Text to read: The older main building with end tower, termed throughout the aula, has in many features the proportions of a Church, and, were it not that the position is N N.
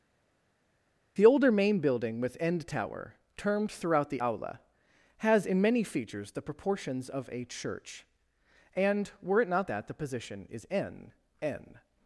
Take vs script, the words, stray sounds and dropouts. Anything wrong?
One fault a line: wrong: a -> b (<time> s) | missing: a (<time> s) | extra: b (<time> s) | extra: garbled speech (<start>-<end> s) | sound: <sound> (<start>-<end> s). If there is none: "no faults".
no faults